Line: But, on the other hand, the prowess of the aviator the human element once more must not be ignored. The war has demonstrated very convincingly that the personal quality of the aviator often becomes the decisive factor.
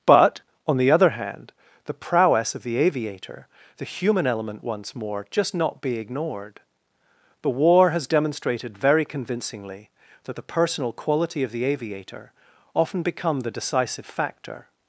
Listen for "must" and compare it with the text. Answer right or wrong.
wrong